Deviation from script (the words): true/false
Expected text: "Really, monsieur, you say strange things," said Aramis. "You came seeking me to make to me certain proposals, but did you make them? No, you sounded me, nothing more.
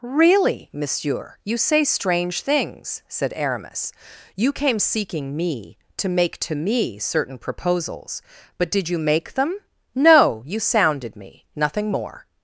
false